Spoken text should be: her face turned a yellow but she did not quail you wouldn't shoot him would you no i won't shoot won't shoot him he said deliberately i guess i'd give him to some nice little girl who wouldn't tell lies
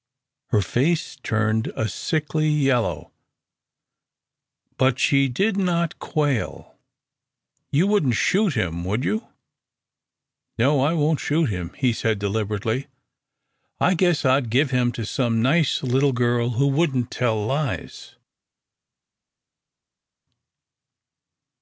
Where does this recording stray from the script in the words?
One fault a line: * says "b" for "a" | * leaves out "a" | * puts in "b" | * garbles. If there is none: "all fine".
* puts in "sickly"
* leaves out "won't shoot"